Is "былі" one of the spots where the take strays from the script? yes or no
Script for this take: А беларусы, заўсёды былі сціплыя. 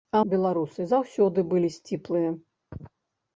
no